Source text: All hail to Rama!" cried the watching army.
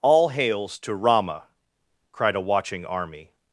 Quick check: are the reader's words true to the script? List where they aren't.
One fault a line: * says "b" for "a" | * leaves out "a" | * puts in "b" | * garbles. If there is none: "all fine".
* says "hails" for "hail"
* says "a" for "the"